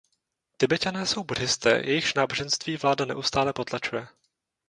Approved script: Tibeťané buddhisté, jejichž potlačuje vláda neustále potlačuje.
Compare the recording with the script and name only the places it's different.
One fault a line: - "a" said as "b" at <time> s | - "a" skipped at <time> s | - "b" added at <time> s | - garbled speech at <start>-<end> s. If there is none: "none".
- "jsou" added at 1.1 s
- "potlačuje" said as "náboženství" at 2.1 s